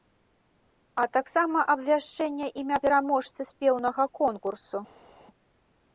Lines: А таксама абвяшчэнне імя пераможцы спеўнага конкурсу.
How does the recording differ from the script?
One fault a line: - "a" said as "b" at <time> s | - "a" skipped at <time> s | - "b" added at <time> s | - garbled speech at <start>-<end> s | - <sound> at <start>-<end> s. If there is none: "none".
none